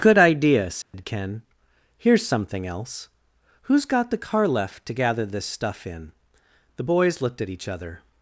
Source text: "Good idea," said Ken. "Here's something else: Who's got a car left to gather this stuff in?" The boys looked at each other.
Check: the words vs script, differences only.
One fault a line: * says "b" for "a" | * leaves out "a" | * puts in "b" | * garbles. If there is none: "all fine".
* says "the" for "a"